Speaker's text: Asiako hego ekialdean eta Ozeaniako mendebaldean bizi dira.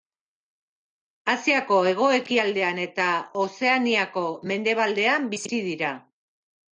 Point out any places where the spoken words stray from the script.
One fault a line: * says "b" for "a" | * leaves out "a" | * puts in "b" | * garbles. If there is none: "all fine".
all fine